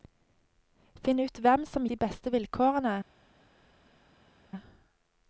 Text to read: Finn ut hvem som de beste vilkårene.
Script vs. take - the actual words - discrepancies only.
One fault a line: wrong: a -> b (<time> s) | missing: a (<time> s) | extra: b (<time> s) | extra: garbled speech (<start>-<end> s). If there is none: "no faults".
no faults